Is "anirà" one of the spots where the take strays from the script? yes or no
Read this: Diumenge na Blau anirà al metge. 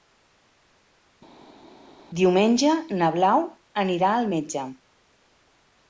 no